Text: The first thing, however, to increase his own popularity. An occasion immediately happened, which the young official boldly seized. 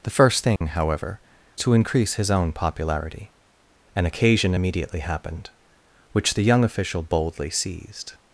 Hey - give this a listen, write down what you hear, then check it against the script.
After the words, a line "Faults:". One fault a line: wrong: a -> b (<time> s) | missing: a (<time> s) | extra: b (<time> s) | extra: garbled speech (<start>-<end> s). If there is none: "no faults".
The first thing, however, to increase his own popularity. An occasion immediately happened, which the young official boldly seized.
Faults:
no faults